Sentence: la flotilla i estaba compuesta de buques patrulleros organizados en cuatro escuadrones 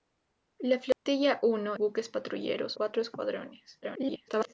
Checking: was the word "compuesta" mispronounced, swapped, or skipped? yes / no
yes